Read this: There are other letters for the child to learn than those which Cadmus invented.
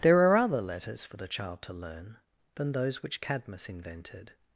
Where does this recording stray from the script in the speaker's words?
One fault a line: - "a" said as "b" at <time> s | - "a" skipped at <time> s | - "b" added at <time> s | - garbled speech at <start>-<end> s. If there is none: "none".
none